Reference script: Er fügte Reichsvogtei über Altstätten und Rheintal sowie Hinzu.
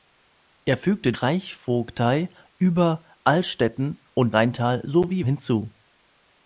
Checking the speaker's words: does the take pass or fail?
pass